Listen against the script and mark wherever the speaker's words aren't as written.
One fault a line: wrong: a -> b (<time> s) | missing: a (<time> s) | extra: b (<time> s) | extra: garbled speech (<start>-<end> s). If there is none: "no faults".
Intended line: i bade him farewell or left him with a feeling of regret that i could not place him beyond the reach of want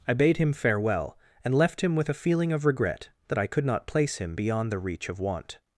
wrong: or -> and (1.4 s)